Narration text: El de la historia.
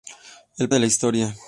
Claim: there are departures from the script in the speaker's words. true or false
false